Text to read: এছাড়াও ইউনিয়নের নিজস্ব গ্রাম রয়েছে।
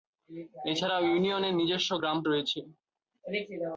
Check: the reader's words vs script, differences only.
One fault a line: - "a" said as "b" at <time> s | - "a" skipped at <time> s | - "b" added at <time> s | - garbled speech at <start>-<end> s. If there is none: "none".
none